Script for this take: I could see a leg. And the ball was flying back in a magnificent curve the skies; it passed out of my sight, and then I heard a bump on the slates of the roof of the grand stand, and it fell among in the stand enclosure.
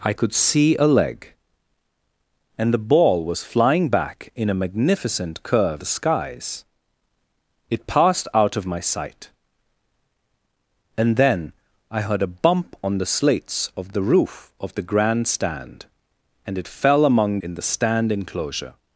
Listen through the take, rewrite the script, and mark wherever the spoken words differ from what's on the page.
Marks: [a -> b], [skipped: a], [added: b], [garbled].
I could see a leg. And the ball was flying back in a magnificent curve the skies; it passed out of my sight, and then I heard a bump on the slates of the roof of the grand stand, and it fell among in the stand enclosure.